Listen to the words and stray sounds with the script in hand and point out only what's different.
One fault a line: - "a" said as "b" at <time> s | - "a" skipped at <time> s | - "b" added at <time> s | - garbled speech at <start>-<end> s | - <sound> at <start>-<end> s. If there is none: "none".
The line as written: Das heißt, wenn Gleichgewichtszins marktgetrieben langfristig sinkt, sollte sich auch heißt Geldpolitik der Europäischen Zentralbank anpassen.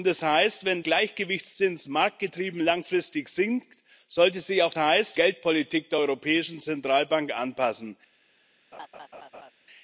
- laugh at 8.7-9.5 s